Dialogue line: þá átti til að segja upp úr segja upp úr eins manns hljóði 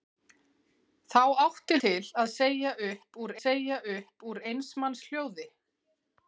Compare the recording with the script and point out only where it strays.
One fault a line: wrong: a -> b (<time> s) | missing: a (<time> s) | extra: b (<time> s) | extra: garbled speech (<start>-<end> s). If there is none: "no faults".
no faults